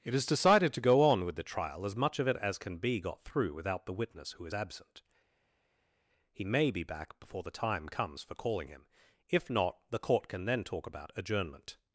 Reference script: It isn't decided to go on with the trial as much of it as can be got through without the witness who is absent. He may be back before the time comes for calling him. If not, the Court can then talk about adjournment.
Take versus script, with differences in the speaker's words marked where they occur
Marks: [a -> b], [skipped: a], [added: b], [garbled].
It [isn't -> is] decided to go on with the trial as much of it as can be got through without the witness who is absent. He may be back before the time comes for calling him. If not, the Court can then talk about adjournment.